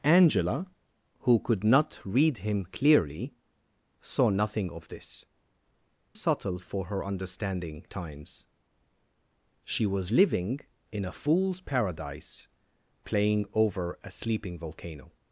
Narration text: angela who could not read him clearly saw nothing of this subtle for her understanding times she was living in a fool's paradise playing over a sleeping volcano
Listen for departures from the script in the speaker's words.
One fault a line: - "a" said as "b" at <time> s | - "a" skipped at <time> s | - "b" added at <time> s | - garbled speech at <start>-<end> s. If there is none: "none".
none